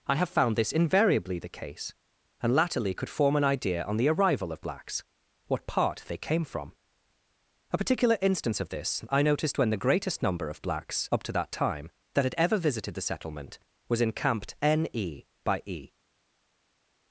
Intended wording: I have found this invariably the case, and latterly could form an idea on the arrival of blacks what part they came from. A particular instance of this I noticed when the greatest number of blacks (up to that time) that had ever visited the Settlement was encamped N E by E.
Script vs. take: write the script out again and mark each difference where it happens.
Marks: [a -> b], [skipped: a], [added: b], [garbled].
I have found this invariably the case, and latterly could form an idea on the arrival of blacks what part they came from. A particular instance of this I noticed when the greatest number of blacks (up to that time) that had ever visited the Settlement was encamped N E by E.